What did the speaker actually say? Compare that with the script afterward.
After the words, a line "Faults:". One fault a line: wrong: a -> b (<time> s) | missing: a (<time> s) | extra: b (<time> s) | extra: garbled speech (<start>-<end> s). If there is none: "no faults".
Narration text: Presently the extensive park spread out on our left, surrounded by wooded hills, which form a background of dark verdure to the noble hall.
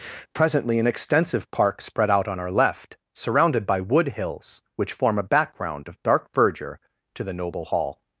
Presently an extensive park spread out on our left, surrounded by wood hills, which form a background of dark verdure to the noble hall.
Faults:
wrong: the -> an (0.8 s)
wrong: wooded -> wood (3.8 s)